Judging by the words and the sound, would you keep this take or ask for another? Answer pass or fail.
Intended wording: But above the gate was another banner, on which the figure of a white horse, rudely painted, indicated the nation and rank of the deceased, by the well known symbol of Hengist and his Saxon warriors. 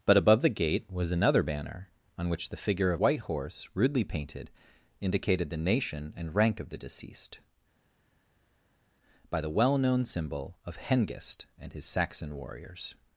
fail